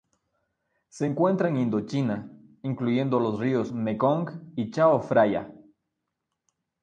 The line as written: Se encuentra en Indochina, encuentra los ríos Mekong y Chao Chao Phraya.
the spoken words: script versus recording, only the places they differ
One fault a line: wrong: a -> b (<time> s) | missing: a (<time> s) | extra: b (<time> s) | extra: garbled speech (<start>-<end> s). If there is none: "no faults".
wrong: encuentra -> incluyendo (2.6 s)
missing: Chao (5.0 s)